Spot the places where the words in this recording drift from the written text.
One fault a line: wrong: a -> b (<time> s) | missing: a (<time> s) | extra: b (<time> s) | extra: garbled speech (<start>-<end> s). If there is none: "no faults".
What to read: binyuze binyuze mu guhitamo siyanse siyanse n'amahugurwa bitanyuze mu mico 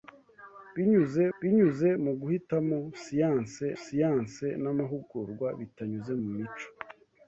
no faults